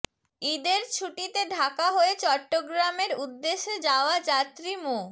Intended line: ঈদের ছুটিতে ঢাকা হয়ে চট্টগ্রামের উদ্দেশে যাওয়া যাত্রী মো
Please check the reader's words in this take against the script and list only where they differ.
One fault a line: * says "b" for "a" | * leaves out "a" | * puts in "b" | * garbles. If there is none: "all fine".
all fine